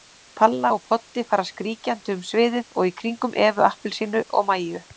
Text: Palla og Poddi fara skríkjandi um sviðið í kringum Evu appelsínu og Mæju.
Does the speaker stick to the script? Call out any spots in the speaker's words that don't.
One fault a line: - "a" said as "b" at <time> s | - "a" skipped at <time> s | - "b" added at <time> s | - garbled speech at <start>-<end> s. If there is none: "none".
- "og" added at 2.8 s